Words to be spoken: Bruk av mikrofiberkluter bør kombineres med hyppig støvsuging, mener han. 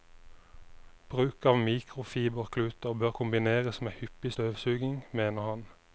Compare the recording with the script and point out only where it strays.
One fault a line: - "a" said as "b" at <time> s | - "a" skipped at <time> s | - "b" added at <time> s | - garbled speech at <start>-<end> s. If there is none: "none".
none